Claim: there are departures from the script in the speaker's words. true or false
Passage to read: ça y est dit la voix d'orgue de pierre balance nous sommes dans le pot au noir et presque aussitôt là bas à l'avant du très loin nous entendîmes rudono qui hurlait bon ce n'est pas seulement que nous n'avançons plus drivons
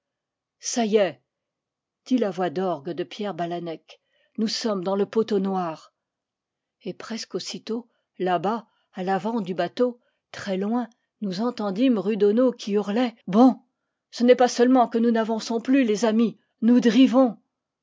true